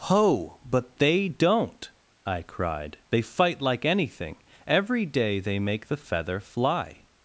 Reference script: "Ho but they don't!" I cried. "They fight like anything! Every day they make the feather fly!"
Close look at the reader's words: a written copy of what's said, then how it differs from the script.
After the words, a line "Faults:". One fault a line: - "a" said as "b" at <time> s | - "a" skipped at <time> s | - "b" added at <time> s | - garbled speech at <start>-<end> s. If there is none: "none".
"Ho but they don't!" I cried. "They fight like anything! Every day they make the feather fly!"
Faults:
none